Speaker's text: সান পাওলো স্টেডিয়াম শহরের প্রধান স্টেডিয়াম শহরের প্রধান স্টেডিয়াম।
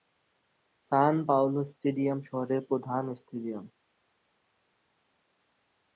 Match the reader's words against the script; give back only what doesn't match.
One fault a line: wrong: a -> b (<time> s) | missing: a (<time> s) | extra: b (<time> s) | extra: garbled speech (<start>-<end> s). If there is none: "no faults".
missing: শহরের প্রধান স্টেডিয়াম (3.7 s)